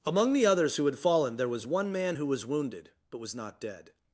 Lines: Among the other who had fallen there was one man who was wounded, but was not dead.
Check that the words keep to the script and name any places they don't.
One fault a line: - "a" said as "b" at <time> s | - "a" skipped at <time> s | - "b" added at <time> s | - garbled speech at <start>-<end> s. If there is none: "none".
- "other" said as "others" at 0.5 s